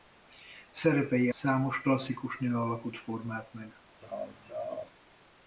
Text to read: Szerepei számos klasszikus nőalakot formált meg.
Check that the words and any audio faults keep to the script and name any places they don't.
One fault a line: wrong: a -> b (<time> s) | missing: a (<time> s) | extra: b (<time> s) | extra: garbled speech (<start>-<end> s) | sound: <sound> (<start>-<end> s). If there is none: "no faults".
sound: laugh (4.0-4.9 s)